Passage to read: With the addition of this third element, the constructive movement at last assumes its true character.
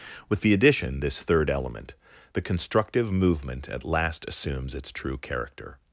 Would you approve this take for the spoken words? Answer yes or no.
no